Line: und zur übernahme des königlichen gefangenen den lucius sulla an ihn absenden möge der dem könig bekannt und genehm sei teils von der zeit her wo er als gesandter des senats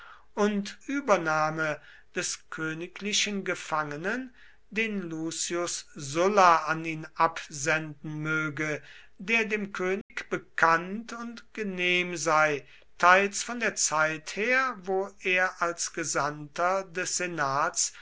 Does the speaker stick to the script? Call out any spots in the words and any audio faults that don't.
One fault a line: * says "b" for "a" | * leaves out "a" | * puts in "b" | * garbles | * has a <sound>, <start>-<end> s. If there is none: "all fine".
* leaves out "zur"
* has a dropout, 10.0-10.1 s